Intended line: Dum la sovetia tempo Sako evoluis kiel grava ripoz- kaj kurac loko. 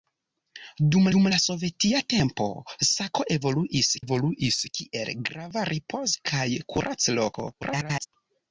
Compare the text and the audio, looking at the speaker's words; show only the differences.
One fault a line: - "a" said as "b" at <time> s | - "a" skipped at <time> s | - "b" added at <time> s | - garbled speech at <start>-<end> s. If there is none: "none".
- "dum" added at 1.1 s
- "evoluis" added at 4.0 s
- garbled speech at 7.6-8.1 s